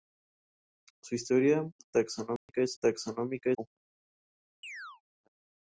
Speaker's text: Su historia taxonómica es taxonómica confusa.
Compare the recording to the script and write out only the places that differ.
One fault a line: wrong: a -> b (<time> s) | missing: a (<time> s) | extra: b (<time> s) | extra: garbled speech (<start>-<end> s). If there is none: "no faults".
no faults